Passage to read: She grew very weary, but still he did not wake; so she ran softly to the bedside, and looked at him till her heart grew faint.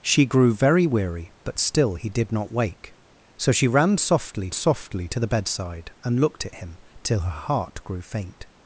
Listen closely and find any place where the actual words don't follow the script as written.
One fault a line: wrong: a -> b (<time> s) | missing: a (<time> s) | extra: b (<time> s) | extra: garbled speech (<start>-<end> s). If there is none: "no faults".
extra: softly (4.5 s)